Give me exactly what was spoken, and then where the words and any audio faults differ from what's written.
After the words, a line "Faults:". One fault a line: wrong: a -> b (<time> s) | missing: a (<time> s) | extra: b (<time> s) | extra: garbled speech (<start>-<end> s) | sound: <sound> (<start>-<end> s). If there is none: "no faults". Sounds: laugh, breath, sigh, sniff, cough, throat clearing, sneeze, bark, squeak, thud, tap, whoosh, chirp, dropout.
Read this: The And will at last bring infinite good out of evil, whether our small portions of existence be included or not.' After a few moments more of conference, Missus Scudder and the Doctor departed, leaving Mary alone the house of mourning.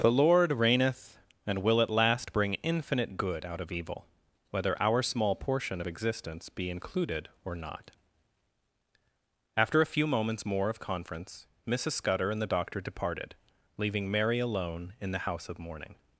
The Lord reigneth, and will at last bring infinite good out of evil, whether our small portion of existence be included or not.' After a few moments more of conference, Missus Scudder and the Doctor departed, leaving Mary alone in the house of mourning.
Faults:
extra: Lord reigneth (0.1 s)
wrong: portions -> portion (5.4 s)
extra: in (15.0 s)